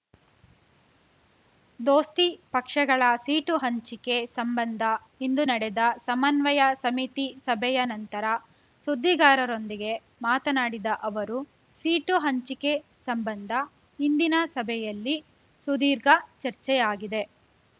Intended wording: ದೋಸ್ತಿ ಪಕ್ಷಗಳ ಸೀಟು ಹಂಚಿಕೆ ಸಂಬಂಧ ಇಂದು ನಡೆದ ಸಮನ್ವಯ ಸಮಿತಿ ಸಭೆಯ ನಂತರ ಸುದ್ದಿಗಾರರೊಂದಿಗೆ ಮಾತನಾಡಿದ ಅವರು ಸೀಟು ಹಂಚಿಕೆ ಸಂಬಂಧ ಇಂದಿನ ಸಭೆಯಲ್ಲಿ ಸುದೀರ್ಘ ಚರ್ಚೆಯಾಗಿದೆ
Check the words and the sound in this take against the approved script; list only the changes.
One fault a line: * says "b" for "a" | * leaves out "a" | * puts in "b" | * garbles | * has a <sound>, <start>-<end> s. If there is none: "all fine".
all fine